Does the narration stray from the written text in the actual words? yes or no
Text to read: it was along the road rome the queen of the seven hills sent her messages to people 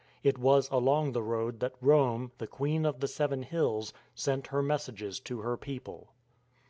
yes